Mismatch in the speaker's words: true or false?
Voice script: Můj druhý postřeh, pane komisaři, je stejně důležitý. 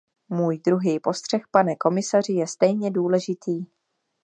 false